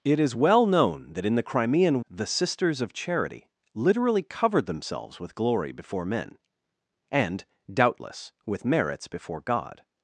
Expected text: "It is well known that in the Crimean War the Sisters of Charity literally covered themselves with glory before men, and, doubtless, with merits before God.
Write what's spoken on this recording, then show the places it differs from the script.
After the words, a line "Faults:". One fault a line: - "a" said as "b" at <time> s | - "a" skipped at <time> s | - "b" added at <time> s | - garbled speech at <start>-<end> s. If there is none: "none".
"It is well known that in the Crimean The Sisters of Charity literally covered themselves with glory before men, and, doubtless, with merits before God.
Faults:
- "War" skipped at 2.0 s